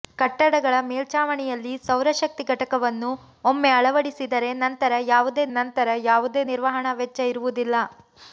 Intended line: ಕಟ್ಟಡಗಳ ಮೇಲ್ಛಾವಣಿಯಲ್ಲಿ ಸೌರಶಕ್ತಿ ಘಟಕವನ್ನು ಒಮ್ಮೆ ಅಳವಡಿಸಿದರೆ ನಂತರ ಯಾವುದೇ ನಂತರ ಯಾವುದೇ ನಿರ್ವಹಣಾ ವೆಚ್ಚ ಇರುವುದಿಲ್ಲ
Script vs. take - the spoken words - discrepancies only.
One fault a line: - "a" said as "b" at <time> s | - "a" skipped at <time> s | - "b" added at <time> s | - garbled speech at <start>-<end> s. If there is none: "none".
none